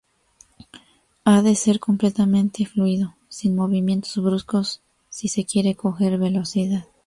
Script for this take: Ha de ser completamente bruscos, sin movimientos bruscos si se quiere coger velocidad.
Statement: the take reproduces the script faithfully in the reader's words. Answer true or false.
false